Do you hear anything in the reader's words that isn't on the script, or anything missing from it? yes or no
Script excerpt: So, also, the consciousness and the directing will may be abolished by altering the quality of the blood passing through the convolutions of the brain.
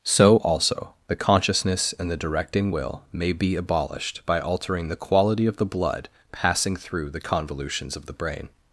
no